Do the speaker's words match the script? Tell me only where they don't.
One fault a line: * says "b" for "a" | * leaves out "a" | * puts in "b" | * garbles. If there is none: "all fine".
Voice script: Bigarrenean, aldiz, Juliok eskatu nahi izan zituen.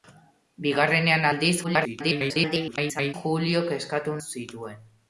* garbles
* leaves out "nahi izan"